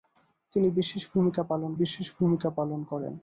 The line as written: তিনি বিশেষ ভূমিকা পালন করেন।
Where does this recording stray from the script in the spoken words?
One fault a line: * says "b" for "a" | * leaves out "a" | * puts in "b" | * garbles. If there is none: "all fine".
* puts in "বিশেষ ভূমিকা পালন"